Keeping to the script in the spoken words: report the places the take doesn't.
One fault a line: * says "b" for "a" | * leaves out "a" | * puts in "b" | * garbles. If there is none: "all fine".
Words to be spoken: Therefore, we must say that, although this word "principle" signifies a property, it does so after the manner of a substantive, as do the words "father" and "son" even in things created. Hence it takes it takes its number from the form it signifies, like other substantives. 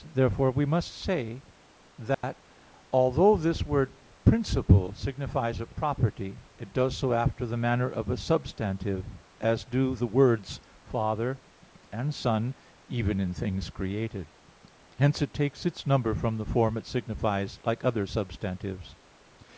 * leaves out "it takes"